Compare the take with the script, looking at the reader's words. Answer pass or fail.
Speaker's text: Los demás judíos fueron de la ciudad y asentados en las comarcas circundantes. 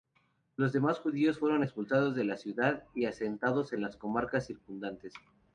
fail